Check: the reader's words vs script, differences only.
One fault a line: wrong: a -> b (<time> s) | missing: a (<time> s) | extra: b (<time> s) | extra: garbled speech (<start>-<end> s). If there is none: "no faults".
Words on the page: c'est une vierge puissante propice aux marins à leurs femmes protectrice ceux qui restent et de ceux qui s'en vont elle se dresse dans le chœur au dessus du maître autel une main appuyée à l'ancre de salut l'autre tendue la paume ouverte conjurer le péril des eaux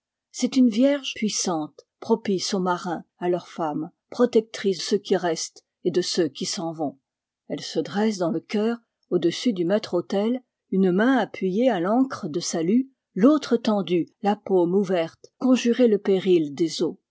no faults